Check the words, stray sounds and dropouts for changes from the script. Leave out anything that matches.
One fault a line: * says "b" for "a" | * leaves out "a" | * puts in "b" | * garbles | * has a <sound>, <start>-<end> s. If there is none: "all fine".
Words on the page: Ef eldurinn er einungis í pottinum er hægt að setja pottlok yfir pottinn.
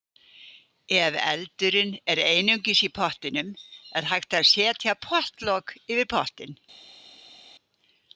all fine